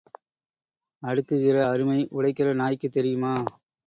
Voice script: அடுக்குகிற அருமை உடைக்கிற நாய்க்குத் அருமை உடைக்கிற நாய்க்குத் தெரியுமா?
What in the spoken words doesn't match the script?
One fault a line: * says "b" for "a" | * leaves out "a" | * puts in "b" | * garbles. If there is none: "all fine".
* leaves out "அருமை உடைக்கிற நாய்க்குத்"